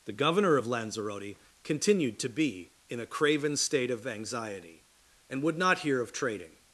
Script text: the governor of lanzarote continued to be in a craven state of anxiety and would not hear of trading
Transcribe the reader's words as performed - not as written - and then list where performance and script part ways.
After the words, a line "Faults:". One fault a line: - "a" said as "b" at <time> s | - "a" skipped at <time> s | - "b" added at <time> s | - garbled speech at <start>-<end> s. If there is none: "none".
the governor of lanzarote continued to be in a craven state of anxiety and would not hear of trading
Faults:
none